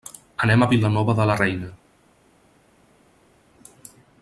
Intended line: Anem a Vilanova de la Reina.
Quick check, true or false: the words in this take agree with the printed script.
true